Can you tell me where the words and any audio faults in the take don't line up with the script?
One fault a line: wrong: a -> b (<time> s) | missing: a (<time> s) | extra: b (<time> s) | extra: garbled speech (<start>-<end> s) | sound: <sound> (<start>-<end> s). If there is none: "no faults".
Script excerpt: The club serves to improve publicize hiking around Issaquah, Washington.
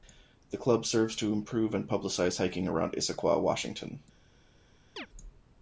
extra: and (1.8 s)
sound: chirp (5.0-5.1 s)